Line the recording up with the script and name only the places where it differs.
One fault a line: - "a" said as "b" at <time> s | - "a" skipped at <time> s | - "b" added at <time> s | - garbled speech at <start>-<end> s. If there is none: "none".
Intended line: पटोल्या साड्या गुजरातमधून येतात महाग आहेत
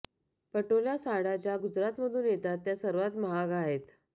- "ज्या" added at 1.4 s
- "त्या सर्वात" added at 2.7 s